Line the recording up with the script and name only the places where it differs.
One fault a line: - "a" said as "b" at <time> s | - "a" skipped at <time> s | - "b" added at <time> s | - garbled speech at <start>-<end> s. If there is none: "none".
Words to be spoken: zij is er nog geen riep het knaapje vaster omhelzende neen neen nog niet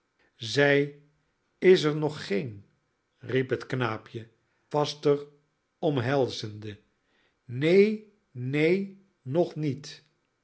none